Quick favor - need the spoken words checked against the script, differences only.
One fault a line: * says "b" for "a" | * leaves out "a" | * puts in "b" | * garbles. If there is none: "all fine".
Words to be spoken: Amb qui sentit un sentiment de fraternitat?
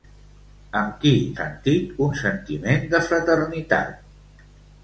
all fine